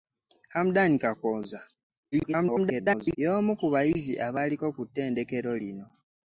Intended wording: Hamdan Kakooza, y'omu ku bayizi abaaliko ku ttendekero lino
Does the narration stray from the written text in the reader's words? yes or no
yes